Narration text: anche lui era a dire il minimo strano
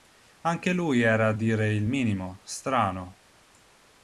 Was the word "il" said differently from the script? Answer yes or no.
no